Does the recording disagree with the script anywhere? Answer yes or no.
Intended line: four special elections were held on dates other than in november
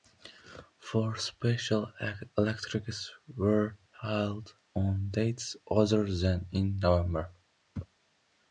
no